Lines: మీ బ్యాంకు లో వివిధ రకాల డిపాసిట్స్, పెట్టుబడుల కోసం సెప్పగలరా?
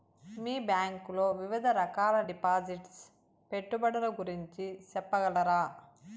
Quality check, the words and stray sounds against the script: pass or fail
fail